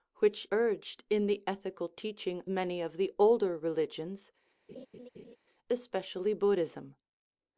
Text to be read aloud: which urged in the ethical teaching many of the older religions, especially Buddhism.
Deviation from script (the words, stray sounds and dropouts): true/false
true